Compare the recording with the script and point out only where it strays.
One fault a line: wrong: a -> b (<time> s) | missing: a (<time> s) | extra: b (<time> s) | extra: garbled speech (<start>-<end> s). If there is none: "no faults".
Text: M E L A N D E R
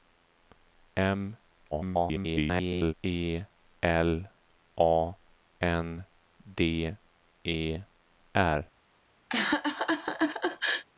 extra: garbled speech (1.7-2.9 s)